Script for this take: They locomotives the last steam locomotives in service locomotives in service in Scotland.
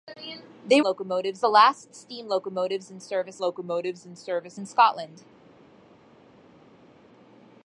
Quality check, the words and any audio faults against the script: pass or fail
pass